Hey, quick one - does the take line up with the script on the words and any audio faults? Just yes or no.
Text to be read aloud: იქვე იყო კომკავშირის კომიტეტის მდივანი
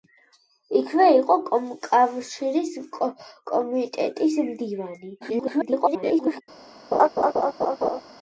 no